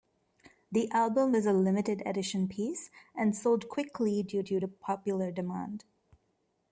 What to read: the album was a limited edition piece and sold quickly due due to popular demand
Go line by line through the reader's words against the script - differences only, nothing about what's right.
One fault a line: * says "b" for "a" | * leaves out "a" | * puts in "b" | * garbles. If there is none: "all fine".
all fine